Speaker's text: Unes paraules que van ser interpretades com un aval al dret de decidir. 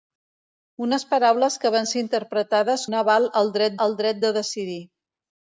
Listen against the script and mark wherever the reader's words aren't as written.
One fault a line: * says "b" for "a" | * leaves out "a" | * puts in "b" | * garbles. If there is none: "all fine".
* leaves out "com"
* puts in "al dret"